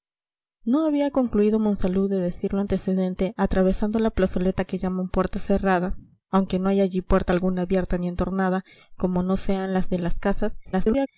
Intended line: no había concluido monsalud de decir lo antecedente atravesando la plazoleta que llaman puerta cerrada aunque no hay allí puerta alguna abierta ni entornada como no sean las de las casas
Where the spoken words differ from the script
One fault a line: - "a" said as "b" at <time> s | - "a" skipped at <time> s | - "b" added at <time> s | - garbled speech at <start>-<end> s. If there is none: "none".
- garbled speech at 10.6-11.1 s